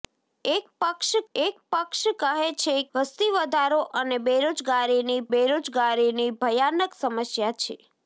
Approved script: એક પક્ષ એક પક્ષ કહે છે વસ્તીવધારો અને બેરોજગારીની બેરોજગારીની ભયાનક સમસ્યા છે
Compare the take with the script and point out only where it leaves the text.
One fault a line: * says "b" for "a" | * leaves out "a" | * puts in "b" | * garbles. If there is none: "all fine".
all fine